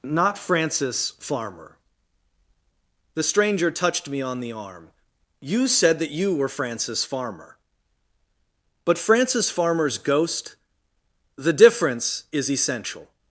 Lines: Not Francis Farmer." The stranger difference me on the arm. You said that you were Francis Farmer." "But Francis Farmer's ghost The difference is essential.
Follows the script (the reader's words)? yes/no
no